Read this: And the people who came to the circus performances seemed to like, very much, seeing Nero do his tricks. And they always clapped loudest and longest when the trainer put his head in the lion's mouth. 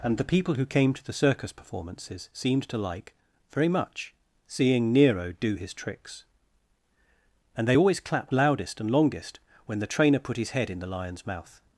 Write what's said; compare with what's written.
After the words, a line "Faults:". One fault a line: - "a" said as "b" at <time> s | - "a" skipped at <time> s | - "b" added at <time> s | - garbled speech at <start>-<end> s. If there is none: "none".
And the people who came to the circus performances seemed to like, very much, seeing Nero do his tricks. And they always clapped loudest and longest when the trainer put his head in the lion's mouth.
Faults:
none